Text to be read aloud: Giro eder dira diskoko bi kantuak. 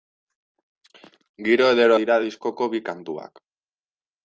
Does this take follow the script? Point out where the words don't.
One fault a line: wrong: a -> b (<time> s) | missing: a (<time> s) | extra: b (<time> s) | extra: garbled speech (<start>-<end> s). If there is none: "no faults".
no faults